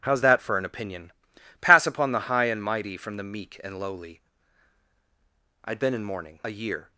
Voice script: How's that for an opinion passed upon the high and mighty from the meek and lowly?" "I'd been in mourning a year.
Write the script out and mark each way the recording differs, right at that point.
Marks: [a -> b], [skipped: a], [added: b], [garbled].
How's that for an opinion [passed -> pass] upon the high and mighty from the meek and lowly?" "I'd been in mourning a year.